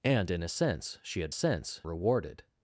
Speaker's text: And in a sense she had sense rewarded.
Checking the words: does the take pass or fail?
pass